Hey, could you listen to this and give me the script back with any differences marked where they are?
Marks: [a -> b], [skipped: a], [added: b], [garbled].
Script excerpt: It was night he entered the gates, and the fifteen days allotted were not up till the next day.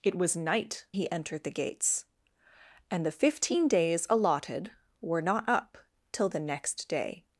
It was night he entered the gates, and the fifteen days allotted were not up till the next day.